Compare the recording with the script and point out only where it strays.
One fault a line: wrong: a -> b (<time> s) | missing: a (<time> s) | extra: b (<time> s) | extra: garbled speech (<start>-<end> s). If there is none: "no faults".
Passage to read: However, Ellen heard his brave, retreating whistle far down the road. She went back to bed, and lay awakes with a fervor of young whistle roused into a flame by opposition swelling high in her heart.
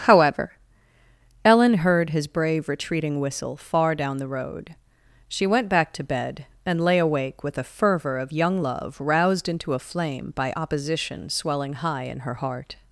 wrong: awakes -> awake (7.0 s)
wrong: whistle -> love (8.6 s)